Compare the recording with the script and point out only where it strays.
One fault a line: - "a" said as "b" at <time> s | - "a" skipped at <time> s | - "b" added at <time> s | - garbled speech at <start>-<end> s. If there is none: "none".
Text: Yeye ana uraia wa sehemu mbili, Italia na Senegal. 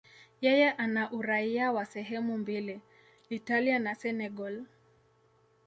none